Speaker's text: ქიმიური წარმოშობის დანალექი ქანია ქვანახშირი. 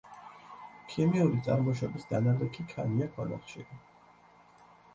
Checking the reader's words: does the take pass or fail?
pass